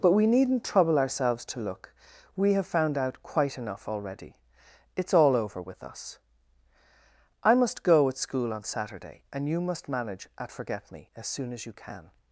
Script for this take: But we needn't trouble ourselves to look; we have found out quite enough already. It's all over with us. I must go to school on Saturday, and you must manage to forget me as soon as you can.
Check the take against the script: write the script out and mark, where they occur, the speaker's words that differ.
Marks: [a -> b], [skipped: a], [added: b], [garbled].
But we needn't trouble ourselves to look; we have found out quite enough already. It's all over with us. I must go [to -> at] school on Saturday, and you must manage [to -> at] forget me as soon as you can.